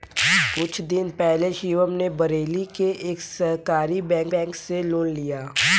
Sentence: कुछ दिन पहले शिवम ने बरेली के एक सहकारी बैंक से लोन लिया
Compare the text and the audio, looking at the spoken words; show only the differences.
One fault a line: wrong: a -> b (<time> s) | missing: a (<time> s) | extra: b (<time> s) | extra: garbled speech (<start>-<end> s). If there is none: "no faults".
extra: बैंक (4.4 s)